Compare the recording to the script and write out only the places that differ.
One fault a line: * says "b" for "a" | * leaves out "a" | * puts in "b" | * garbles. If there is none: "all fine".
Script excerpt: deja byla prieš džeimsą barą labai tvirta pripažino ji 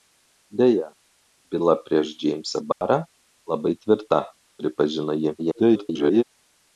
* garbles